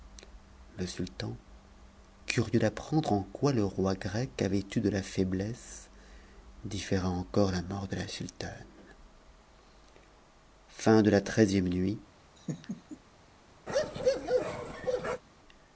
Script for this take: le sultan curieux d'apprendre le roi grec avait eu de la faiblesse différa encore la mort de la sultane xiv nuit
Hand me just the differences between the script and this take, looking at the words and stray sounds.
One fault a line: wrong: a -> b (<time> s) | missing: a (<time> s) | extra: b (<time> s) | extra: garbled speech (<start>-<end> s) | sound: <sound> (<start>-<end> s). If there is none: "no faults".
extra: en quoi (3.1 s)
sound: laugh (12.4-13.0 s)
sound: bark (13.7-15.2 s)